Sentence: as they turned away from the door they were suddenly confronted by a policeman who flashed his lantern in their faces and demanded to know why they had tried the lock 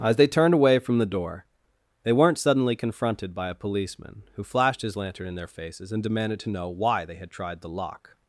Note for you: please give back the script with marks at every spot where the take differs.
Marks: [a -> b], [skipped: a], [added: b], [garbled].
as they turned away from the door they [were -> weren't] suddenly confronted by a policeman who flashed his lantern in their faces and demanded to know why they had tried the lock